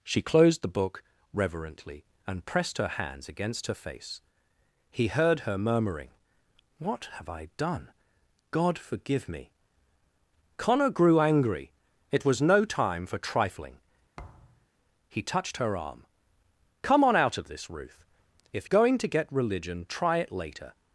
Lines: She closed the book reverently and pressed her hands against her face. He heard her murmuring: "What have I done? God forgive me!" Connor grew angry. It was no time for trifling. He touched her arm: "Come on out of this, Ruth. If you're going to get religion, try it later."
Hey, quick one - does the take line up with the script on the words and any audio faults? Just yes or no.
no